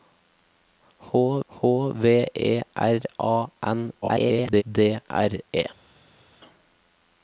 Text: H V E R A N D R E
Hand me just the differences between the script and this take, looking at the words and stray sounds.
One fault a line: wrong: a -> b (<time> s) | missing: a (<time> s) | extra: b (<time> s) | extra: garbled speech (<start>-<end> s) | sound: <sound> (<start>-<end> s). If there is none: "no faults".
extra: h (1.5 s)
extra: garbled speech (4.0-4.6 s)